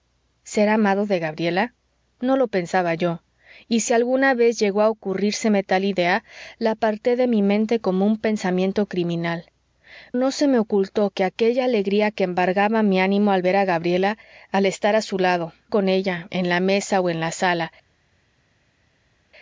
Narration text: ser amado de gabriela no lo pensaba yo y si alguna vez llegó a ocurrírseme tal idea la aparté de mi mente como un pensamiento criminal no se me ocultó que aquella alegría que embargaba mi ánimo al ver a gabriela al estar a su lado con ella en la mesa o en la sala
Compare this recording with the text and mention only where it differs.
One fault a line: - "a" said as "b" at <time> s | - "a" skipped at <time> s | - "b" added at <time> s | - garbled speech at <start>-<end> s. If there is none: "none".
none